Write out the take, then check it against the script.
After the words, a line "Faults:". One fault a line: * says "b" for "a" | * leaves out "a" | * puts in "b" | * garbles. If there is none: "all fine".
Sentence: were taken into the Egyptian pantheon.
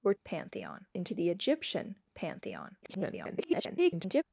were pantheon into the Egyptian pantheon. [garbled]
Faults:
* says "pantheon" for "taken"
* garbles